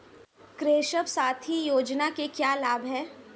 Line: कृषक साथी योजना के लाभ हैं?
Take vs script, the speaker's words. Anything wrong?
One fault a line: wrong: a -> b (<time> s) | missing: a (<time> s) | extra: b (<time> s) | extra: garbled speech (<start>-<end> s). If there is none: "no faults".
extra: क्या (2.3 s)